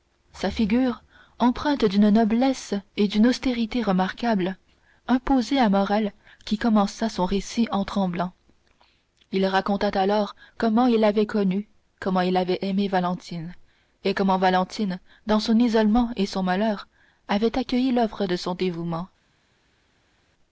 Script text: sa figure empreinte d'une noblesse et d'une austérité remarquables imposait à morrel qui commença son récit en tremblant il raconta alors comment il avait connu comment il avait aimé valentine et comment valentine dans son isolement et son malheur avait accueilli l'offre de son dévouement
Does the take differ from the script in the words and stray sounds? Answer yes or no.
no